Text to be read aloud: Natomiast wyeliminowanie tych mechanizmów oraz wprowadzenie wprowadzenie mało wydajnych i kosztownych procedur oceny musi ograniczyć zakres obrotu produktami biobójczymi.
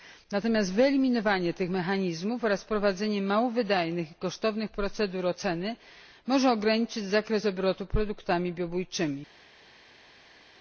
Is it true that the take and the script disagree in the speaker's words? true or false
true